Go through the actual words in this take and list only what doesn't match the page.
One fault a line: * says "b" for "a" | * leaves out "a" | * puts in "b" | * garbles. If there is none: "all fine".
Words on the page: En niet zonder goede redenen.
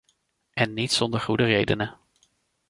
all fine